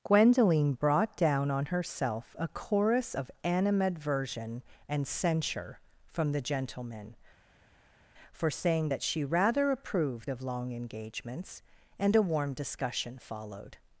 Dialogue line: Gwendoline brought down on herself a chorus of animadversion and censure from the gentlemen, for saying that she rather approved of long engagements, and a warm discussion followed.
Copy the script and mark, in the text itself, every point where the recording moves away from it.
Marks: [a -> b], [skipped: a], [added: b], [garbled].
Gwendoline brought down on herself a chorus of animadversion and censure from the gentlemen, for saying that she rather approved of long engagements, and a warm discussion followed.